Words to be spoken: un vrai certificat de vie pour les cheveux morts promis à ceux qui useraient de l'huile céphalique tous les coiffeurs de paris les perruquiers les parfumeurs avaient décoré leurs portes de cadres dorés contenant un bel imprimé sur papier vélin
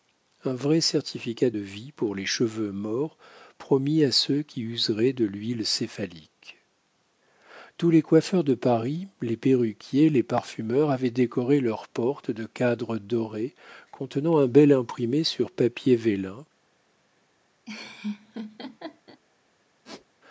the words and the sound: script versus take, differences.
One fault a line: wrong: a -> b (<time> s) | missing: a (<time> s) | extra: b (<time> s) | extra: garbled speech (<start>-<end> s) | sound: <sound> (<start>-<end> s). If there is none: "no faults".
sound: laugh (17.7-19.2 s)
sound: squeak (19.8-20.1 s)